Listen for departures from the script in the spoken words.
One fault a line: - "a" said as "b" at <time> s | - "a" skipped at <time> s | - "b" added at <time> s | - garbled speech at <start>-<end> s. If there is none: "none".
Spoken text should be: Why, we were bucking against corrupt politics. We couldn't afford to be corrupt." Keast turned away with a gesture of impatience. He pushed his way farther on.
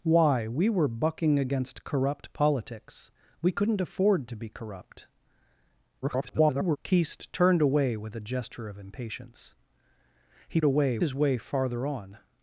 - garbled speech at 6.0-6.8 s
- "pushed" said as "away" at 10.6 s